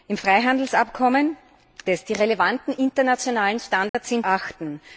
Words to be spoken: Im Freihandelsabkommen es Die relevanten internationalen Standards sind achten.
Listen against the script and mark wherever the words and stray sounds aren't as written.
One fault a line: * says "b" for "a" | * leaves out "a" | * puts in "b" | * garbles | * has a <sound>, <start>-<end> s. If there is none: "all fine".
* has a dropout, 3.9-3.9 s